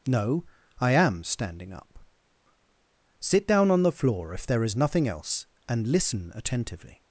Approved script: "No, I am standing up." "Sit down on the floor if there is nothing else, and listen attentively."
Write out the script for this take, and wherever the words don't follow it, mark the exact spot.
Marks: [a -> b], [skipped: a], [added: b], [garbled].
"No, I am standing up." "Sit down on the floor if there is nothing else, and listen attentively."